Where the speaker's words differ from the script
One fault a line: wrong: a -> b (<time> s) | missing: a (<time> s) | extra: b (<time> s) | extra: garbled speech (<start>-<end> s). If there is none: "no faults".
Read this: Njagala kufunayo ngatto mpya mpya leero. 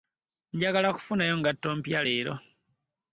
missing: mpya (2.0 s)